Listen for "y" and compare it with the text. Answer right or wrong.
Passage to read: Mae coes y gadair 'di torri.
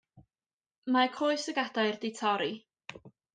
right